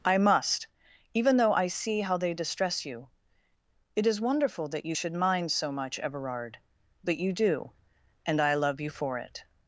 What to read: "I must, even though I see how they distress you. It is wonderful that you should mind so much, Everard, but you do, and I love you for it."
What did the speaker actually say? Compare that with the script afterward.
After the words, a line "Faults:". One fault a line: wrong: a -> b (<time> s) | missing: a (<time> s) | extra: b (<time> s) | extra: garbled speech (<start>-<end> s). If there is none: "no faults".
"I must, even though I see how they distress you. It is wonderful that you should mind so much, Everard, but you do, and I love you for it."
Faults:
no faults